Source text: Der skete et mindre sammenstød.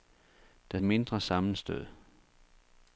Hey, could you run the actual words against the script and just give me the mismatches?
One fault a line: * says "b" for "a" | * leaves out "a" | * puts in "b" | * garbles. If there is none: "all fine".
* leaves out "skete"